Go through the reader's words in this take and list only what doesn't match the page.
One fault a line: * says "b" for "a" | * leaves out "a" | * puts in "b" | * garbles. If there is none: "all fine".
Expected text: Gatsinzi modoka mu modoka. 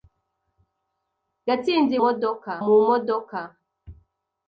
all fine